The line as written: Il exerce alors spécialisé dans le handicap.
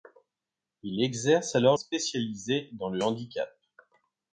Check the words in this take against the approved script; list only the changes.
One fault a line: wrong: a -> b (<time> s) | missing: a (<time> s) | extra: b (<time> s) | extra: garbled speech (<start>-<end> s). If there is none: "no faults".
no faults